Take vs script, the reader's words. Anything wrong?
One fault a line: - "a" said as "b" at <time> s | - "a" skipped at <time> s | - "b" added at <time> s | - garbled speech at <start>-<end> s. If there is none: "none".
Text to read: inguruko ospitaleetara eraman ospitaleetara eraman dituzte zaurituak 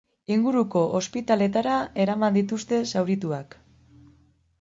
- "ospitaleetara eraman" skipped at 2.4 s